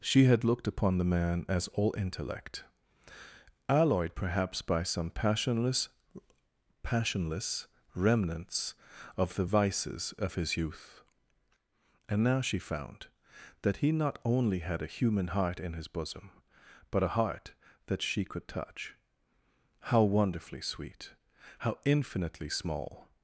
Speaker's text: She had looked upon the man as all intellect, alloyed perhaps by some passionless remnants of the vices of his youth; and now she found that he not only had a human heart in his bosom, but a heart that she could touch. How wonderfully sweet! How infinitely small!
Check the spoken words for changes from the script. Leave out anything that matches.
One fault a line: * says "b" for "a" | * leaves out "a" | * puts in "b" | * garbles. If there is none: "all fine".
* puts in "passionless"